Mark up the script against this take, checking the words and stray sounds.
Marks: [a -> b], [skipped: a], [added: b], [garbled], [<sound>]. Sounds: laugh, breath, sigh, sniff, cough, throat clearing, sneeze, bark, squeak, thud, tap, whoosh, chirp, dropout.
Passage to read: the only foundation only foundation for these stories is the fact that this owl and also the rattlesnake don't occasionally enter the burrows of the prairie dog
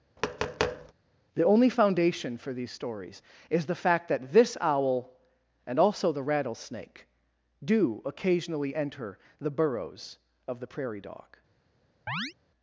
[tap] the only foundation [skipped: only foundation] for these stories is the fact that this owl and also the rattlesnake [don't -> do] occasionally enter the burrows of the prairie dog [chirp]